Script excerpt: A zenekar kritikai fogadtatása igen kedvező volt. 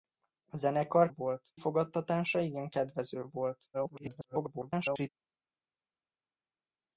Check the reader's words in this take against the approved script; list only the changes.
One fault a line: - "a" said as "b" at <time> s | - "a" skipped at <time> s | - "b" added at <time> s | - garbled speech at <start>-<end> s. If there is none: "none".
- "kritikai" said as "volt" at 1.1 s
- garbled speech at 3.7-5.1 s